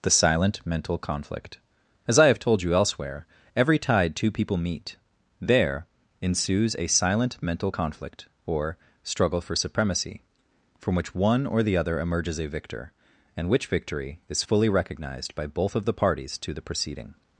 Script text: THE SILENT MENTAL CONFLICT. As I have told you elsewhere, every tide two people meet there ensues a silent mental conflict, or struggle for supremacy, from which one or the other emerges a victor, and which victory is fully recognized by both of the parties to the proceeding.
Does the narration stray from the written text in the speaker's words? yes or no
no